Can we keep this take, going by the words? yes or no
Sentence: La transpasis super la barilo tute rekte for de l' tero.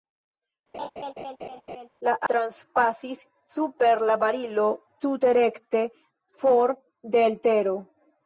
yes